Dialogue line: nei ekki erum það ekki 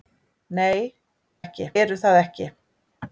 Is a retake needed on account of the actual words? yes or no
no